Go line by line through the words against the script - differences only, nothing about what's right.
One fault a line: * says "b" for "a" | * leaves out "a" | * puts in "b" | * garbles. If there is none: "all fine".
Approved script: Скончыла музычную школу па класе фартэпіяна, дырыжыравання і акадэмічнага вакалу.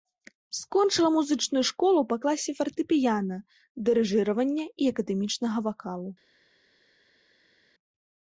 all fine